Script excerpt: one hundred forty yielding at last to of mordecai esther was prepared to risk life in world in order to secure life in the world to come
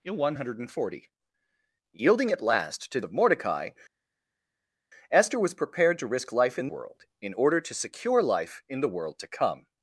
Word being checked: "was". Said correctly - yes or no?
yes